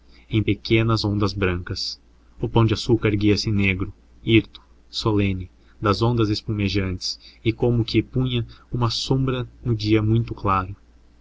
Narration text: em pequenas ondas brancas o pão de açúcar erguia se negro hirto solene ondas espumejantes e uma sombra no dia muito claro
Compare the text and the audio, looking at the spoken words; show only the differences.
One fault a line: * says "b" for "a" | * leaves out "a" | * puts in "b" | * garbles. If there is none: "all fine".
* puts in "das"
* puts in "como que punha"